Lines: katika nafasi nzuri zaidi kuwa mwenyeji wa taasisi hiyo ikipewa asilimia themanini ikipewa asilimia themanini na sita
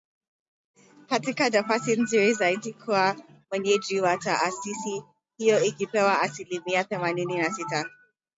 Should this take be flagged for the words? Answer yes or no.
yes